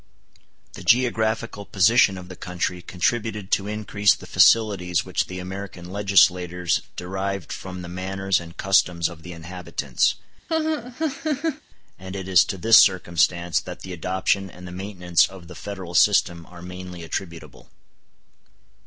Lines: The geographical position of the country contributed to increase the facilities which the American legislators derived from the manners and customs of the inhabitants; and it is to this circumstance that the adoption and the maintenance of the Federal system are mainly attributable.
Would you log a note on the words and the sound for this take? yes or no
yes